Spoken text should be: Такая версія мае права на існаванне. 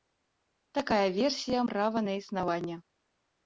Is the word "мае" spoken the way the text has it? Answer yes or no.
no